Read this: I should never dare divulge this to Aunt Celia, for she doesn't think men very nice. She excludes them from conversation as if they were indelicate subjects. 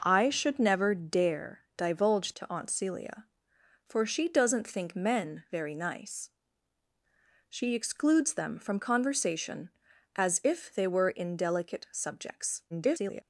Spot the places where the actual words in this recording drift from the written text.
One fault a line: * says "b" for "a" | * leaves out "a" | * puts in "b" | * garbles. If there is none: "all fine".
* leaves out "this"
* garbles